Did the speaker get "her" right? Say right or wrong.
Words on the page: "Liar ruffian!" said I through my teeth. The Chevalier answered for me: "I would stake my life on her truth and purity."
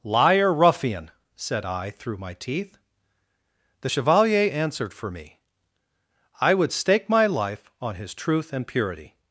wrong